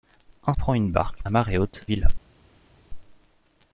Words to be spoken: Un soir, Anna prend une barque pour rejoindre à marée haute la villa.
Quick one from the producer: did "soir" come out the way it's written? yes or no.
no